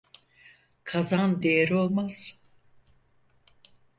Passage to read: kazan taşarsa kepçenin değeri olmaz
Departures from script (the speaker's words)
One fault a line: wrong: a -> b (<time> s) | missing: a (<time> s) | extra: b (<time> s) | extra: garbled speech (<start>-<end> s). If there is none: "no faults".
missing: taşarsa kepçenin (1.4 s)